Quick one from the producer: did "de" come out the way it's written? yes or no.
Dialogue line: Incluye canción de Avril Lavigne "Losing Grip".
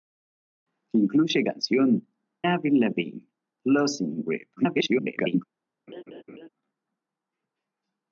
no